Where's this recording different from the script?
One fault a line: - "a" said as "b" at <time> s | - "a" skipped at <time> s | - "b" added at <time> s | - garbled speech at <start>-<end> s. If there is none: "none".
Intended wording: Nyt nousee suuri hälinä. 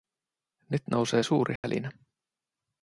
none